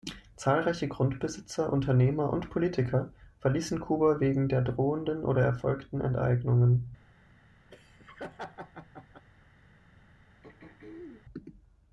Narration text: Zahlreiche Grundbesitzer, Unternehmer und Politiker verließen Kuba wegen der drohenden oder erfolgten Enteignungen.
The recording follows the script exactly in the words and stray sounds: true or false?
false